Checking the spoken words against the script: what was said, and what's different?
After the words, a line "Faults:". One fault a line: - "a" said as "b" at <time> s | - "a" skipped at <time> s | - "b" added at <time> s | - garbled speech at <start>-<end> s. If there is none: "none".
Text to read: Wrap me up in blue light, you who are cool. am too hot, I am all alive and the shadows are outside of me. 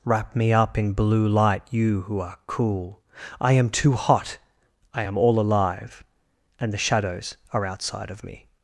Wrap me up in blue light, you who are cool. I am too hot, I am all alive and the shadows are outside of me.
Faults:
- "I" added at 3.4 s